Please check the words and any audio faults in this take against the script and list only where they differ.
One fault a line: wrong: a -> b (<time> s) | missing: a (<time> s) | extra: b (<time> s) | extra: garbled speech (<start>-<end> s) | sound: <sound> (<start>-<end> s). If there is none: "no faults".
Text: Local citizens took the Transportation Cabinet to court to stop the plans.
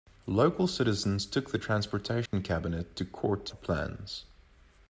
sound: dropout (2.3-2.3 s)
missing: stop (3.5 s)